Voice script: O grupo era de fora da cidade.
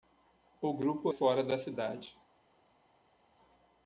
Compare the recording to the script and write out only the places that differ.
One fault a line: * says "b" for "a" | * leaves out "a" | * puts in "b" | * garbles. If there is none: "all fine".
* leaves out "era de"